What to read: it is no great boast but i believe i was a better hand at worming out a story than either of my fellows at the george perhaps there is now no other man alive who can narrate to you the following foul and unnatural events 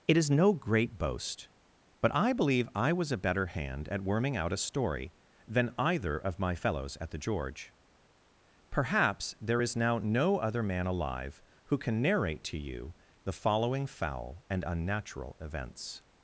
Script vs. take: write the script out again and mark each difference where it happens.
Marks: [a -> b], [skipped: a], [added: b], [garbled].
it is no great boast but i believe i was a better hand at worming out a story than either of my fellows at the george perhaps there is now no other man alive who can narrate to you the following foul and unnatural events